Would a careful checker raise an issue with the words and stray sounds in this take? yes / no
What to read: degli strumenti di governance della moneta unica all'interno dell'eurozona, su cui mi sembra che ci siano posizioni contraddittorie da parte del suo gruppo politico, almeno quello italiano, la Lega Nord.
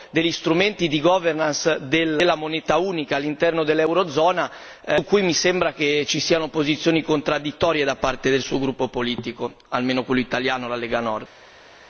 no